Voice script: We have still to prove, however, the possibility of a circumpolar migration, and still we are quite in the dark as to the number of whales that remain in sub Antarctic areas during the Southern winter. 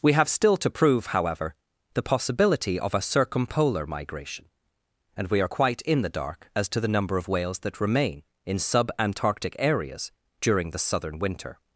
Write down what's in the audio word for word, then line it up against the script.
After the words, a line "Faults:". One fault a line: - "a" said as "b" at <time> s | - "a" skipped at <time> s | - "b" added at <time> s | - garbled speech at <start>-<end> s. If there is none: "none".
We have still to prove, however, the possibility of a circumpolar migration, and we are quite in the dark as to the number of whales that remain in sub Antarctic areas during the Southern winter.
Faults:
- "still" skipped at 5.3 s